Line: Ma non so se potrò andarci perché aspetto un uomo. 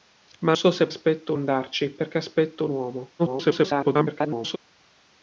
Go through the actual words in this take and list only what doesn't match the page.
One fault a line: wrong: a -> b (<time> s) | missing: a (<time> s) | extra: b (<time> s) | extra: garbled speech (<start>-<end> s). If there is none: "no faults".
missing: non (0.6 s)
wrong: potrò -> aspetto (0.9 s)
extra: garbled speech (3.2-4.6 s)